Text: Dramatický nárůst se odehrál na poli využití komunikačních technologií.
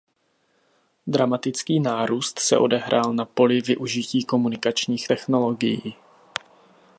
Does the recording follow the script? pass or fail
pass